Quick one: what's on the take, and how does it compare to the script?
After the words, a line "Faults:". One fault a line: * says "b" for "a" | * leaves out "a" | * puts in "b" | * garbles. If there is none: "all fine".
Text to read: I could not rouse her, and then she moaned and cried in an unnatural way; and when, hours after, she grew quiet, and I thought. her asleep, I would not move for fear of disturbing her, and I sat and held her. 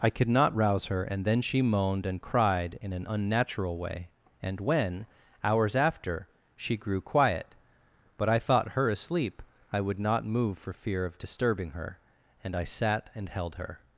I could not rouse her, and then she moaned and cried in an unnatural way; and when, hours after, she grew quiet, but I thought. her asleep, I would not move for fear of disturbing her, and I sat and held her.
Faults:
* says "but" for "and"